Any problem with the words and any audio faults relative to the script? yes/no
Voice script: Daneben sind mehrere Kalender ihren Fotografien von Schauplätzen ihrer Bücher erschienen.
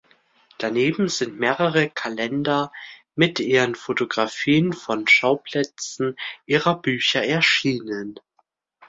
yes